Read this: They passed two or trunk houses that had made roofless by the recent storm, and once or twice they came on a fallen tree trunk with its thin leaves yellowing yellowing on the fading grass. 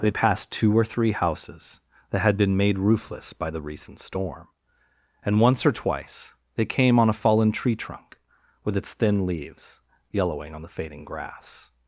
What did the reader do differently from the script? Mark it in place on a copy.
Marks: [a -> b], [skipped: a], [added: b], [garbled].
They passed two or [trunk -> three] houses that had [added: been] made roofless by the recent storm, and once or twice they came on a fallen tree trunk with its thin leaves yellowing [skipped: yellowing] on the fading grass.